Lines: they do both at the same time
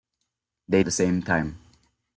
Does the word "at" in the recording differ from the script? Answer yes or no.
yes